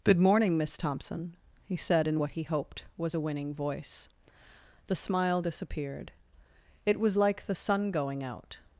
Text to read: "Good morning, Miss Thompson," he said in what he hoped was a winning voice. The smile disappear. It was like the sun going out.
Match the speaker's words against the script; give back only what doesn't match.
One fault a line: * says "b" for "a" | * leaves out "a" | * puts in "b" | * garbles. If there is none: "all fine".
* says "disappeared" for "disappear"